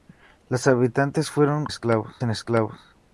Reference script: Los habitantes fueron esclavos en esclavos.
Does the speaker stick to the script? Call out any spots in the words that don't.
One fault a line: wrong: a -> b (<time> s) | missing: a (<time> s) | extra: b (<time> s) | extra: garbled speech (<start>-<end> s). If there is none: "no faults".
no faults